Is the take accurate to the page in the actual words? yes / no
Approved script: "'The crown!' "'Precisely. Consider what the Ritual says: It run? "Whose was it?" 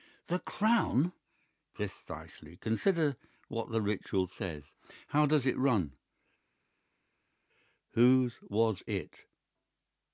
no